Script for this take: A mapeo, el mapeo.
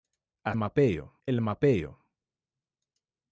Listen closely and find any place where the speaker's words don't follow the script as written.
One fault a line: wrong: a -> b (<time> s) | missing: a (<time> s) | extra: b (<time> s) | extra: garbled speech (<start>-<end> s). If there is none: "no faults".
no faults